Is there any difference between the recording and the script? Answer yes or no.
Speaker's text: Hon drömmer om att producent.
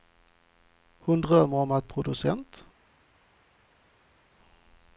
no